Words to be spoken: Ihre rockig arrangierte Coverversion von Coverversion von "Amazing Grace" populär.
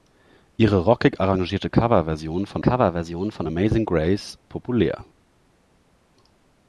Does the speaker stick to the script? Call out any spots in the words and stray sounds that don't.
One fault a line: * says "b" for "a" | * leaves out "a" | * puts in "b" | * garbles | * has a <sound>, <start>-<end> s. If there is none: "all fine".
all fine